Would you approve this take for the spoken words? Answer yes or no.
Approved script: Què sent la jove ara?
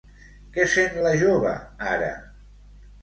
yes